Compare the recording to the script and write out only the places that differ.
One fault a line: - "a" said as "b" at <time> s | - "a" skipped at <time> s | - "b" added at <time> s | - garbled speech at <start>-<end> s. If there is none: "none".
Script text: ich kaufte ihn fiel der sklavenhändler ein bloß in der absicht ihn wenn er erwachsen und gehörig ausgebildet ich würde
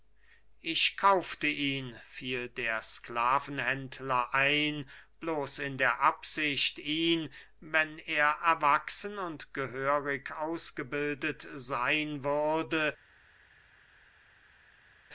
- "ich" said as "seyn" at 11.5 s